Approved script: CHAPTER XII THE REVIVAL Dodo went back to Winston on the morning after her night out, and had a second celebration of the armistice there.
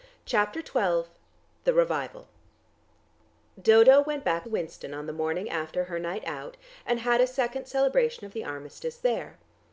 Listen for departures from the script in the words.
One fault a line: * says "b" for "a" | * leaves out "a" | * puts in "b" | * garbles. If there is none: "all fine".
* leaves out "to"